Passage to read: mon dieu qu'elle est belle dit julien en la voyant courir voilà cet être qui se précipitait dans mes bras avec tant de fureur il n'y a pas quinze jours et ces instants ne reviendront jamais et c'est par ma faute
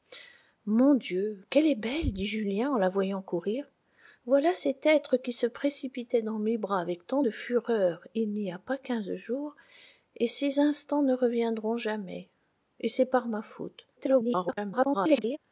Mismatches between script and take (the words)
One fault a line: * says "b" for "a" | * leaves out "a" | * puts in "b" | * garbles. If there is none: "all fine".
* garbles